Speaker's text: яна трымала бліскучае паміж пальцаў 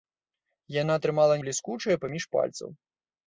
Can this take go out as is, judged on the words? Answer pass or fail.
pass